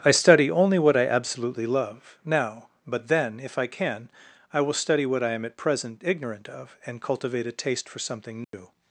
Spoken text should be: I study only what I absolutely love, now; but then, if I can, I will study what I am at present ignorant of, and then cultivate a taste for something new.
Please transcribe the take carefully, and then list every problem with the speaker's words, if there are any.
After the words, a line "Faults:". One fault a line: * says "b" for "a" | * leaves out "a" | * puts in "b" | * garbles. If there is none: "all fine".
I study only what I absolutely love, now; but then, if I can, I will study what I am at present ignorant of, and cultivate a taste for something new.
Faults:
* leaves out "then"